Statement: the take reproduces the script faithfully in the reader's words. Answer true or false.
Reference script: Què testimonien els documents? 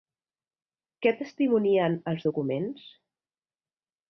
true